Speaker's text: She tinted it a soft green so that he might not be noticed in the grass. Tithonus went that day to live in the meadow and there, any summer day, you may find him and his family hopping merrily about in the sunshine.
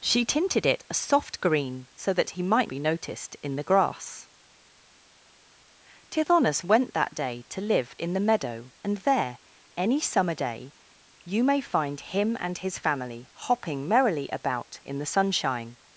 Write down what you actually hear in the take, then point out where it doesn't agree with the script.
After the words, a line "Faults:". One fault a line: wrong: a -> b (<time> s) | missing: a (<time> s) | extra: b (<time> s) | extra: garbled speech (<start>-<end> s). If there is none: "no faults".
She tinted it a soft green so that he might be noticed in the grass. Tithonus went that day to live in the meadow and there, any summer day, you may find him and his family hopping merrily about in the sunshine.
Faults:
missing: not (2.7 s)